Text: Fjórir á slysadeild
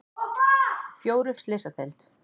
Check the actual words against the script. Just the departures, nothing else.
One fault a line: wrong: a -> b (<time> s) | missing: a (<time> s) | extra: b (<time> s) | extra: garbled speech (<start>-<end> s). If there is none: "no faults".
no faults